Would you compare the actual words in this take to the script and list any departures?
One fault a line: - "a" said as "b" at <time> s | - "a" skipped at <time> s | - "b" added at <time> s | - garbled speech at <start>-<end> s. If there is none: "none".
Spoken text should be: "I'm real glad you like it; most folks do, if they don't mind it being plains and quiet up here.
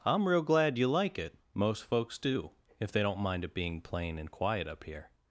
- "plains" said as "plain" at 3.8 s